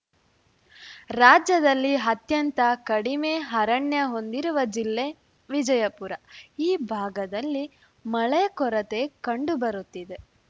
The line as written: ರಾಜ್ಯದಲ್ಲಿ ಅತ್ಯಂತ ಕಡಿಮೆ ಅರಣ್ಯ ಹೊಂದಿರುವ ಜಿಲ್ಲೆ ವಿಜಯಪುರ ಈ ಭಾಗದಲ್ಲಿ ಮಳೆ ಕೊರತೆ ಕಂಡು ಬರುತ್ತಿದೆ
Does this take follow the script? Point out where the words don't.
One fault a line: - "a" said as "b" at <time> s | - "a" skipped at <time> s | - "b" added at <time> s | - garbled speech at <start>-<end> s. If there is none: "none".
none